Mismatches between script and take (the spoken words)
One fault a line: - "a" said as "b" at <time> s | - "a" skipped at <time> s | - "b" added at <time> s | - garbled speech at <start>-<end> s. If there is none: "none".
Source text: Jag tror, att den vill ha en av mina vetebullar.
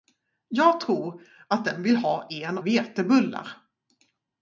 - "av mina" skipped at 2.6 s